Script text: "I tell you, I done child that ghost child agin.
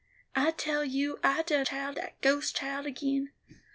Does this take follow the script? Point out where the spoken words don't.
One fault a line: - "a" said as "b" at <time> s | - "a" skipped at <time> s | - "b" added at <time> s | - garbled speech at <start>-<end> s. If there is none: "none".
none